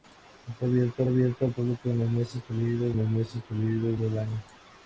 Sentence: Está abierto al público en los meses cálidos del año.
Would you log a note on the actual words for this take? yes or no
yes